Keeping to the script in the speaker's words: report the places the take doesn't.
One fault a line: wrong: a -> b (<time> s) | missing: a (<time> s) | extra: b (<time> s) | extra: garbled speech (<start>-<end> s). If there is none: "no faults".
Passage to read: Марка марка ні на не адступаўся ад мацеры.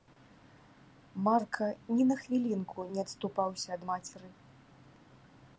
missing: марка (1.7 s)
extra: хвілінку (2.2 s)